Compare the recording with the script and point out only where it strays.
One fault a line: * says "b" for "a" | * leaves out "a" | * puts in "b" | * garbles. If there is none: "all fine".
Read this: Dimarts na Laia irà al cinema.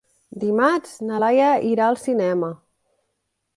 all fine